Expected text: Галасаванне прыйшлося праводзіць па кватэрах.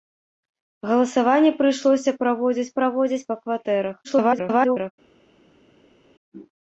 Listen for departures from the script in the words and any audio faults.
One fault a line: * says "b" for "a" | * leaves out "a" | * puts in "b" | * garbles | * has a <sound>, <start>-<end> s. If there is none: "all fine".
* puts in "праводзіць"
* garbles